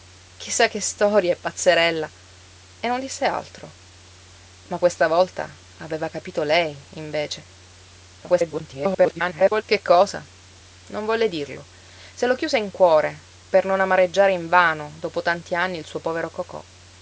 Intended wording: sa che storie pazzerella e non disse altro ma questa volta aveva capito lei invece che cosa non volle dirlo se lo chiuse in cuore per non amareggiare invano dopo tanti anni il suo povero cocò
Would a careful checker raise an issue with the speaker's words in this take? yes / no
yes